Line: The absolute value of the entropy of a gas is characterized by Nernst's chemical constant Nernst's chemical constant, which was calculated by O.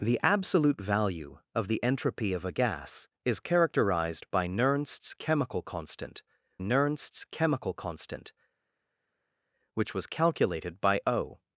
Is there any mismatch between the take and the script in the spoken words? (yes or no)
no